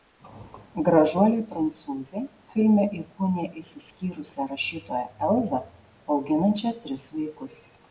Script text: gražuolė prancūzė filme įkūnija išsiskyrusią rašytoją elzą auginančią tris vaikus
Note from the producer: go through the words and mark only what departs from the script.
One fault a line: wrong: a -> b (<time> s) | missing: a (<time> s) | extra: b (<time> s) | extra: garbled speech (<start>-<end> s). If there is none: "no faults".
no faults